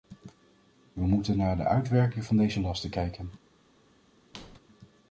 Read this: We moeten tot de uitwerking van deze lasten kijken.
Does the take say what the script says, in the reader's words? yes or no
no